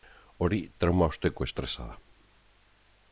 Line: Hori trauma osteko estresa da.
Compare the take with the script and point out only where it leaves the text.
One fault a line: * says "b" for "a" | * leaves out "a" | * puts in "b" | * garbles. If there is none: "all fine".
all fine